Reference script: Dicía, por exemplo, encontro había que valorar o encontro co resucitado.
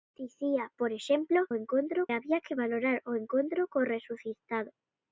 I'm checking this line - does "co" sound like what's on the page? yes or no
yes